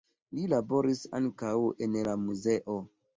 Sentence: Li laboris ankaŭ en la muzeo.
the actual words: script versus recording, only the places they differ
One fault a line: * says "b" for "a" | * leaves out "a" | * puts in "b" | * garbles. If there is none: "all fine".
all fine